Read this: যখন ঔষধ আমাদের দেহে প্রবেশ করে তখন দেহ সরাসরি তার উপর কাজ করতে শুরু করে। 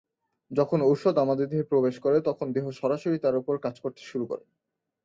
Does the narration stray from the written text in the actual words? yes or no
no